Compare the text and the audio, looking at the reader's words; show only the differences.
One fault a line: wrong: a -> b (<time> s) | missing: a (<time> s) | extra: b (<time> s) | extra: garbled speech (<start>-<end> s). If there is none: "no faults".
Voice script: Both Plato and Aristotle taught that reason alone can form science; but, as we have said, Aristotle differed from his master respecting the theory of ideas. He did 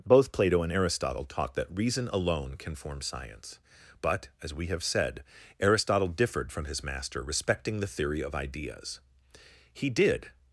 no faults